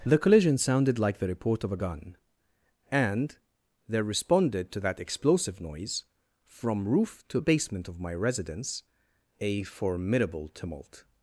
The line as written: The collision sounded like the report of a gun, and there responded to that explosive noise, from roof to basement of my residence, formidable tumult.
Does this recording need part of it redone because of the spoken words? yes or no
yes